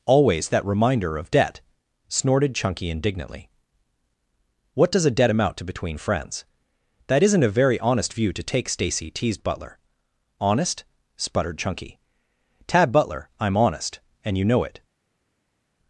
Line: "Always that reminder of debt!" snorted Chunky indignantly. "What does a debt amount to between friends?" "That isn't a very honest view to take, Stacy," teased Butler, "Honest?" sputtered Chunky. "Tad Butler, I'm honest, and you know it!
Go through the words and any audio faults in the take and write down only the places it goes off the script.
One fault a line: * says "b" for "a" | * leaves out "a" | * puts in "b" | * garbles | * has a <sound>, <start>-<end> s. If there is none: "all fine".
all fine